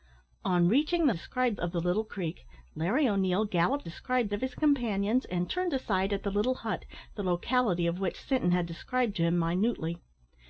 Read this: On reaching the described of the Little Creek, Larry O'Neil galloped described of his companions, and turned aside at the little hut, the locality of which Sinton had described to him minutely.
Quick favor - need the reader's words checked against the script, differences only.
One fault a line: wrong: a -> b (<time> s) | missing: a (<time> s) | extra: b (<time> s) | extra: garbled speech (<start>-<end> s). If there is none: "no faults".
no faults